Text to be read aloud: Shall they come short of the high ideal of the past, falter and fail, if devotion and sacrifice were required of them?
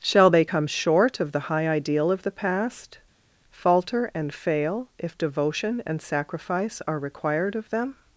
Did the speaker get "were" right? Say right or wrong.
wrong